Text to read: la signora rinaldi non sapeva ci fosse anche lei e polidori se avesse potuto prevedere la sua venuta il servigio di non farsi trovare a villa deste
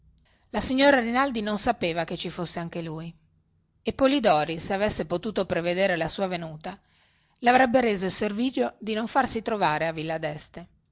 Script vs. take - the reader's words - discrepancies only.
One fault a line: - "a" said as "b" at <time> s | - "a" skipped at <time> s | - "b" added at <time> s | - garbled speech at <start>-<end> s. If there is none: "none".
- "che" added at 2.0 s
- "lei" said as "lui" at 2.8 s
- "le avrebbe reso" added at 7.4 s